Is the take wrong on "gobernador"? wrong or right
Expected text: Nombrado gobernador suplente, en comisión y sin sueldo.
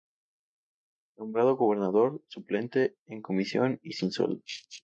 right